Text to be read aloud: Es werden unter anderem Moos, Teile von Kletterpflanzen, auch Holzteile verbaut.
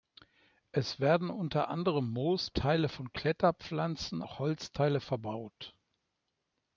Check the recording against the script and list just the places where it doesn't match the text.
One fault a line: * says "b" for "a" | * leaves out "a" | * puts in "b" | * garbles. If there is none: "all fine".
all fine